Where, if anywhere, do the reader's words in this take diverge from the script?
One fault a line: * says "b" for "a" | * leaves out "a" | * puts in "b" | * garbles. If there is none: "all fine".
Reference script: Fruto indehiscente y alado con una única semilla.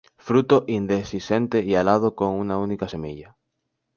all fine